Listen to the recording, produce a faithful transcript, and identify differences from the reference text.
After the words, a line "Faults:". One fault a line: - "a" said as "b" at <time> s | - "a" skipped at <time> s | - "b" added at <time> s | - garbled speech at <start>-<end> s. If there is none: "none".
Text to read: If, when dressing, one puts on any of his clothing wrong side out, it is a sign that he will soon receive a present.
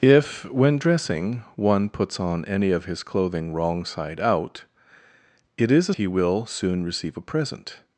If, when dressing, one puts on any of his clothing wrong side out, it is a he will soon receive a present.
Faults:
- "sign that" skipped at 5.9 s